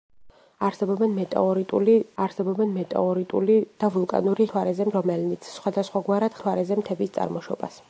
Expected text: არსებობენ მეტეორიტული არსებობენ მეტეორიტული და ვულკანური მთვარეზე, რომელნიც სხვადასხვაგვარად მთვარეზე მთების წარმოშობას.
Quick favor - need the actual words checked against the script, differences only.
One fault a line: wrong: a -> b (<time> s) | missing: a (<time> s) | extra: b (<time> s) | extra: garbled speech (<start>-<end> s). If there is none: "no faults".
no faults